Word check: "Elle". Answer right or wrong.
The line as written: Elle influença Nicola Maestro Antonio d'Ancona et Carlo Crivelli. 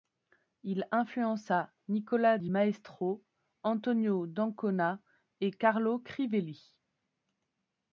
wrong